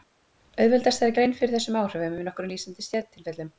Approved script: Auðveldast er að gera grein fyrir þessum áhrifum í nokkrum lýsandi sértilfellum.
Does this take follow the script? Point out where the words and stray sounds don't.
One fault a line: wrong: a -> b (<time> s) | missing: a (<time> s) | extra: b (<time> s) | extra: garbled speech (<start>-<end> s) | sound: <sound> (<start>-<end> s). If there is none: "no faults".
missing: gera (1.1 s)